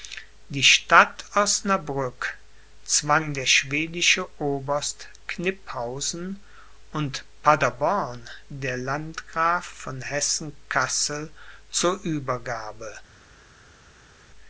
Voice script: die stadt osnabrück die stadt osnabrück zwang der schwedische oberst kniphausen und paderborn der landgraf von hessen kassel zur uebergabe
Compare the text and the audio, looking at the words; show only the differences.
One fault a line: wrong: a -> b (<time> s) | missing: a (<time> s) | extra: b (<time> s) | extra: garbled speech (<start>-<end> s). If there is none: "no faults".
missing: die stadt osnabrück (2.4 s)